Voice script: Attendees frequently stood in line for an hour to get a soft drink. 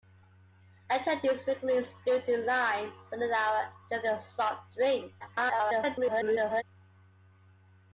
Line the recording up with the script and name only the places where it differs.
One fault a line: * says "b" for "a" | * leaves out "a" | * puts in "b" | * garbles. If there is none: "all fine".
* garbles